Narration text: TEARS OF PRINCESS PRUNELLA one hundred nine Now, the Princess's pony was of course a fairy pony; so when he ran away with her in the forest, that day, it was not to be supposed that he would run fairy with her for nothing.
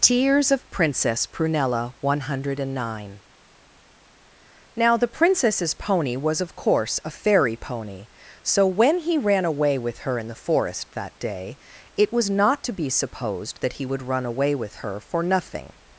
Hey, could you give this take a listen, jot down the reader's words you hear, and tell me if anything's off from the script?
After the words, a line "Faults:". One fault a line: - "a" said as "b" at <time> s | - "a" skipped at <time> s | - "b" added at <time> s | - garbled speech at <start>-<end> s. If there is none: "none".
TEARS OF PRINCESS PRUNELLA one hundred nine Now, the Princess's pony was of course a fairy pony; so when he ran away with her in the forest, that day, it was not to be supposed that he would run away with her for nothing.
Faults:
- "fairy" said as "away" at 14.2 s